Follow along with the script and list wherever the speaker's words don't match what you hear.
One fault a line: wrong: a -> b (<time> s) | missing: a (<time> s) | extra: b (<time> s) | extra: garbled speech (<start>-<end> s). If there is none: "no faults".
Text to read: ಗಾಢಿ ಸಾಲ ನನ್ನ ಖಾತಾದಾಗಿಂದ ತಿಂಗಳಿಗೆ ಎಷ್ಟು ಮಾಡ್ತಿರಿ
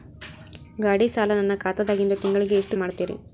no faults